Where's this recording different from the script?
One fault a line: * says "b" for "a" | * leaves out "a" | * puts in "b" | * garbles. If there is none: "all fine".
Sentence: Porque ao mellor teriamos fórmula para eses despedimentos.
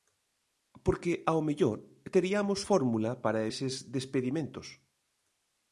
all fine